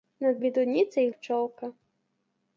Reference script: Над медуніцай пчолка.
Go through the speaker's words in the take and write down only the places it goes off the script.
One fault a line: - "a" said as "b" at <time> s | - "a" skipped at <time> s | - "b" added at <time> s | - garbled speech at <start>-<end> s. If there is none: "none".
none